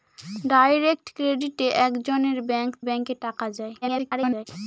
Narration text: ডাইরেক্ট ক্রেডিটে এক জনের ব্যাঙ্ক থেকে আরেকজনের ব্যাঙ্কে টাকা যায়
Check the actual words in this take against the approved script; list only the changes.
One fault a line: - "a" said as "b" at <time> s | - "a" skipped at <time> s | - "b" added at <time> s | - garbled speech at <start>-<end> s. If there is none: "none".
- "থেকে আরেকজনের" skipped at 2.7 s
- garbled speech at 3.8-4.5 s